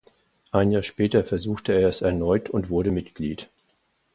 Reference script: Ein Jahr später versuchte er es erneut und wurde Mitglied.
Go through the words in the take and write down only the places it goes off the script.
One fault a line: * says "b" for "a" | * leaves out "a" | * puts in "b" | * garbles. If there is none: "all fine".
all fine